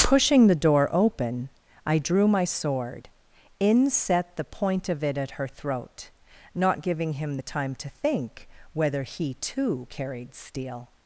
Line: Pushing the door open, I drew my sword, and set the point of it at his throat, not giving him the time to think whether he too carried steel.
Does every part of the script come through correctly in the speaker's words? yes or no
no